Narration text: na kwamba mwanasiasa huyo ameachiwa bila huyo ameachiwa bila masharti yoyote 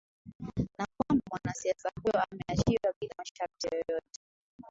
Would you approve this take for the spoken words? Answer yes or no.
no